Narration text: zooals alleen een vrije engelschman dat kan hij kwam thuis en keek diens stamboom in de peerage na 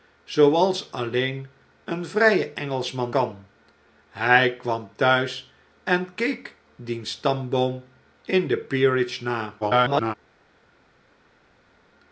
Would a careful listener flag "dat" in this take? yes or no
yes